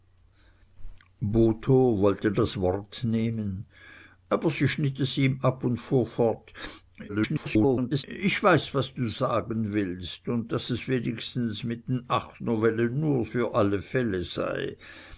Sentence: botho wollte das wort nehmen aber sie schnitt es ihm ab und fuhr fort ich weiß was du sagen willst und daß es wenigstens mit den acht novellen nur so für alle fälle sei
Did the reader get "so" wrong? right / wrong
wrong